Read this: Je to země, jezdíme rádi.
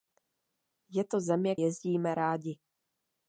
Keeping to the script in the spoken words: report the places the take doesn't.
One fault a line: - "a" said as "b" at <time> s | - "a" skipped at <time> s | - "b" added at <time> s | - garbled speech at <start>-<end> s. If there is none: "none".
none